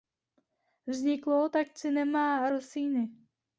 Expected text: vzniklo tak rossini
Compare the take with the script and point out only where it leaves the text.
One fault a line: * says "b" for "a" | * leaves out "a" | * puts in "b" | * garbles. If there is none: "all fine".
* puts in "cinema"